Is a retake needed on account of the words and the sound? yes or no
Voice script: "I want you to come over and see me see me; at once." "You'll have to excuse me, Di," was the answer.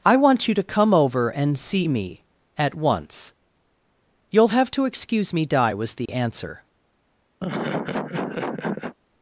yes